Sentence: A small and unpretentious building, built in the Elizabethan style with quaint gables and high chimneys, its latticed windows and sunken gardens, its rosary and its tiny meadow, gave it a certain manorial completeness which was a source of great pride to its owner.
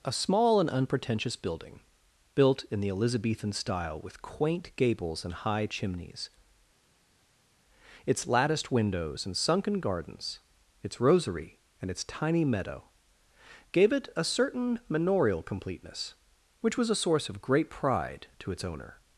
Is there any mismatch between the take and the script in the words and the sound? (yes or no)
no